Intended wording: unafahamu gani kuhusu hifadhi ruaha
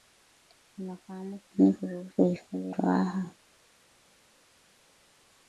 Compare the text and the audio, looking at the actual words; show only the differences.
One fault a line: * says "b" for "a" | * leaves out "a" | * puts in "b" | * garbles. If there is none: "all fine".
all fine